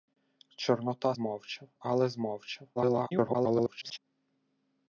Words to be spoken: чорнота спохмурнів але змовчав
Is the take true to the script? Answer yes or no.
no